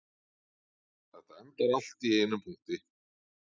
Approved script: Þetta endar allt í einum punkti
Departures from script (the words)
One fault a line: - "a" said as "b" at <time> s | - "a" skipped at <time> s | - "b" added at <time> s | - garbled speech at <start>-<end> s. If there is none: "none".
none